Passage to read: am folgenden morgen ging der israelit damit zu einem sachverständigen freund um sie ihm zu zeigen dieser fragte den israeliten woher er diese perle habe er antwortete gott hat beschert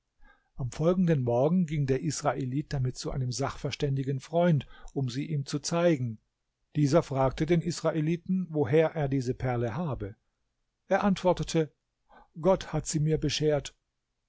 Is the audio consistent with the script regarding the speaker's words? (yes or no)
no